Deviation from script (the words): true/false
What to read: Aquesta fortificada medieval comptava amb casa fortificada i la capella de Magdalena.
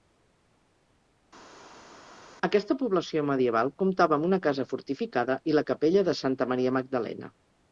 true